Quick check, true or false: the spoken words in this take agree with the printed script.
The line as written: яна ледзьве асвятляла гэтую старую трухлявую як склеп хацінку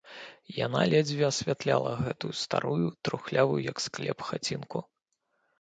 true